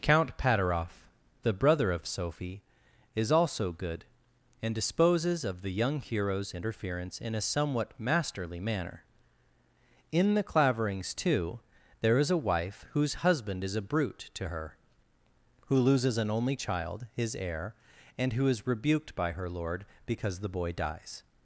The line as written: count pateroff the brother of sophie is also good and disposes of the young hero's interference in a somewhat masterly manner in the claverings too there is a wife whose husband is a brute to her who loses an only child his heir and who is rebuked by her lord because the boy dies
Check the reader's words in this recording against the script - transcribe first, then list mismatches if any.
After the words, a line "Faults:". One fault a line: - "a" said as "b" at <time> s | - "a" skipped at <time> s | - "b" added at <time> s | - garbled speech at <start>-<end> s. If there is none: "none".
count pateroff the brother of sophie is also good and disposes of the young hero's interference in a somewhat masterly manner in the claverings too there is a wife whose husband is a brute to her who loses an only child his heir and who is rebuked by her lord because the boy dies
Faults:
none